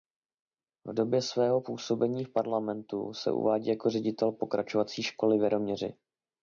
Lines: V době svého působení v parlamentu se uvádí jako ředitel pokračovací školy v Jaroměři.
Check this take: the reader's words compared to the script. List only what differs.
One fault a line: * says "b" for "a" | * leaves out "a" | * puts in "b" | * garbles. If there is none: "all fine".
all fine